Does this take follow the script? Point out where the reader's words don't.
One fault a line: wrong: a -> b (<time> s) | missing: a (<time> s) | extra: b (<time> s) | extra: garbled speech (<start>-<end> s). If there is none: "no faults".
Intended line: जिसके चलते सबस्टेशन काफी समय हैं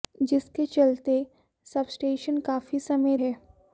no faults